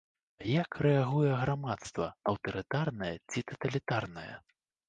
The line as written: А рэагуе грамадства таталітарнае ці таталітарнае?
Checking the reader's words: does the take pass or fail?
fail